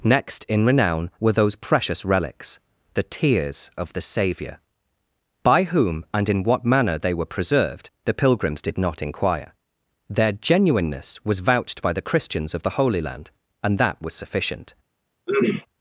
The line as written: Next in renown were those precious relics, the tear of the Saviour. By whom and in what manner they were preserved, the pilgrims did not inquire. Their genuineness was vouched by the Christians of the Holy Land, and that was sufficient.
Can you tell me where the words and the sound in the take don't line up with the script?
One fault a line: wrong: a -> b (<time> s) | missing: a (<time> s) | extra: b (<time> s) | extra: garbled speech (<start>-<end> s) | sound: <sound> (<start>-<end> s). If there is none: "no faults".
wrong: tear -> tears (3.0 s)
sound: throat clearing (15.3-15.7 s)